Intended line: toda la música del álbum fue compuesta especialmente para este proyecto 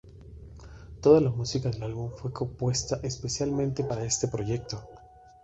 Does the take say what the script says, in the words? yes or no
yes